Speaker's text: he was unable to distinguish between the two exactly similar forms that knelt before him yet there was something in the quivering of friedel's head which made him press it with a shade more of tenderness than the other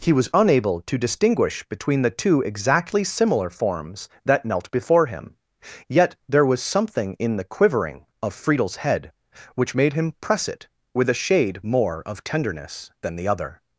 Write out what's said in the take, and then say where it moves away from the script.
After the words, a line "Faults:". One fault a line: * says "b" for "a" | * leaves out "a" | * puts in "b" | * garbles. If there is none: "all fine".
he was unable to distinguish between the two exactly similar forms that knelt before him yet there was something in the quivering of friedel's head which made him press it with a shade more of tenderness than the other
Faults:
all fine